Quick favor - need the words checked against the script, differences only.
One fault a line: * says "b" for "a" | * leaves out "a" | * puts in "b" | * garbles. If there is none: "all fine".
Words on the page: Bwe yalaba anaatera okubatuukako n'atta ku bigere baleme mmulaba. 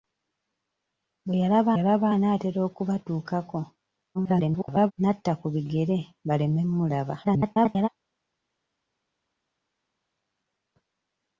* puts in "yalaba"
* garbles
* garbles